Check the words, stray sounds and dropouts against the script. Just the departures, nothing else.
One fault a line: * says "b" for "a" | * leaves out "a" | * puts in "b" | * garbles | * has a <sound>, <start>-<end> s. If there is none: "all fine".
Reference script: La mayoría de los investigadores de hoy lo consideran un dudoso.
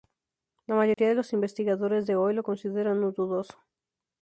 * has a dropout, 0.9-1.0 s